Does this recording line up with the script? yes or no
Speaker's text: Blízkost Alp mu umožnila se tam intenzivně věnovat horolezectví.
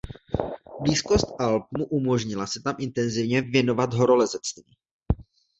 yes